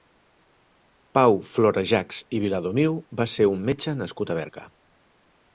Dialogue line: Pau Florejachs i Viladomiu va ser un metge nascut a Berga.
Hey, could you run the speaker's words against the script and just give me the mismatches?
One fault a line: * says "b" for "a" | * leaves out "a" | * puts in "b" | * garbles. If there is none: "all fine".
all fine